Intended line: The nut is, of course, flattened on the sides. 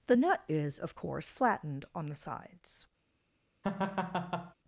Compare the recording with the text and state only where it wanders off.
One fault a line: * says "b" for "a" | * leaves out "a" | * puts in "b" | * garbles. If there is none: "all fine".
all fine